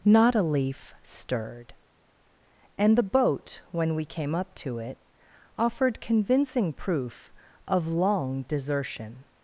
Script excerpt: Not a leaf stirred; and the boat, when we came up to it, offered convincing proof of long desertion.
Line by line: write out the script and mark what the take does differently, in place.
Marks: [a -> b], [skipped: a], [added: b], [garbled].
Not a leaf stirred; and the boat, when we came up to it, offered convincing proof of long desertion.